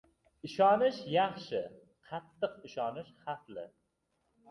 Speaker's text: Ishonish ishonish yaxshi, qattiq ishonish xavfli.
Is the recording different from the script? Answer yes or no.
yes